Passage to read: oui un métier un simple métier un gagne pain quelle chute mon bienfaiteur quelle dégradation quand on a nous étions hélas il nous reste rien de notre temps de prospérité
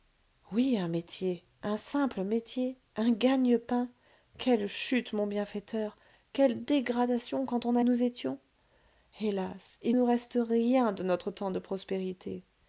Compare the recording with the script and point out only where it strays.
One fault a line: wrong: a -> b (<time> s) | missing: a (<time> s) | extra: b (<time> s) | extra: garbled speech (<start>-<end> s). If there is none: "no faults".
no faults